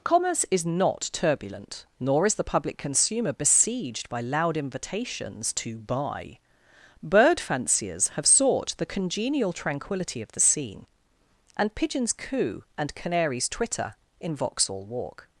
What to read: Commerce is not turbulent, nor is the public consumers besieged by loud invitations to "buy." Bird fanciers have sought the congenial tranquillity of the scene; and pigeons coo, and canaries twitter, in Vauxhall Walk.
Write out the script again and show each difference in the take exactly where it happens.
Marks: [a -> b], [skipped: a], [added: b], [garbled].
Commerce is not turbulent, nor is the public [consumers -> consumer] besieged by loud invitations to "buy." Bird fanciers have sought the congenial tranquillity of the scene; and pigeons coo, and canaries twitter, in Vauxhall Walk.